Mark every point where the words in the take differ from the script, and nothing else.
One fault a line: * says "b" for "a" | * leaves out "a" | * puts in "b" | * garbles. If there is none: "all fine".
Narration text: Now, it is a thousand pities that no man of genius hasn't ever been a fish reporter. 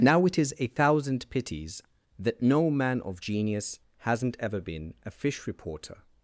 all fine